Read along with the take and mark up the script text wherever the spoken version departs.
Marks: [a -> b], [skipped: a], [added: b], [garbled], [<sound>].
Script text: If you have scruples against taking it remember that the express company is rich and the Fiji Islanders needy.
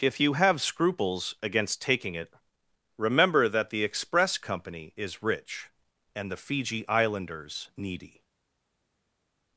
If you have scruples against taking it remember that the express company is rich and the Fiji Islanders needy.